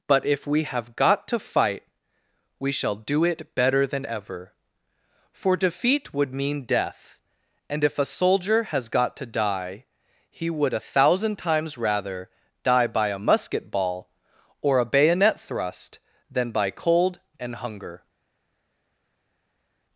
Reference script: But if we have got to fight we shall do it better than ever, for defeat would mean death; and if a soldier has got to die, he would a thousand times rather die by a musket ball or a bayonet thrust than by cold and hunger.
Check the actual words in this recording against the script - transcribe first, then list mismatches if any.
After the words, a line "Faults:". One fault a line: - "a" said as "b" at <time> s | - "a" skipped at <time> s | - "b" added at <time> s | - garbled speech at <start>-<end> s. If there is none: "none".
But if we have got to fight we shall do it better than ever, for defeat would mean death; and if a soldier has got to die, he would a thousand times rather die by a musket ball or a bayonet thrust than by cold and hunger.
Faults:
none